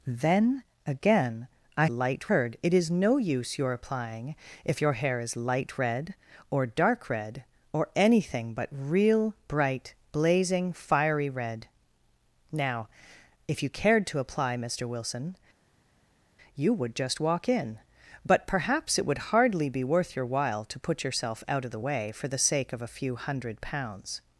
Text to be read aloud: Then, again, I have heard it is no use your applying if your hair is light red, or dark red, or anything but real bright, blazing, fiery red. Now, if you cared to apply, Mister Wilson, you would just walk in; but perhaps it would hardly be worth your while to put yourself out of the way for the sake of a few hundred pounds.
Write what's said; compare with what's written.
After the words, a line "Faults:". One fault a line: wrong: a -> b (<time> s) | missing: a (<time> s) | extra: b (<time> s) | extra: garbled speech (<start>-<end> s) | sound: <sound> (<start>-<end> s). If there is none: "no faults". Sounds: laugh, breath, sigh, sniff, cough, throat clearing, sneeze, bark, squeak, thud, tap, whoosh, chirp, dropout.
Then, again, I light heard it is no use your applying if your hair is light red, or dark red, or anything but real bright, blazing, fiery red. Now, if you cared to apply, Mister Wilson, you would just walk in; but perhaps it would hardly be worth your while to put yourself out of the way for the sake of a few hundred pounds.
Faults:
wrong: have -> light (1.9 s)